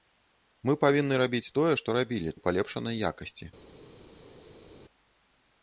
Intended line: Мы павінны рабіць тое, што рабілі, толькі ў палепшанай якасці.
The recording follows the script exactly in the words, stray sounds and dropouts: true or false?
false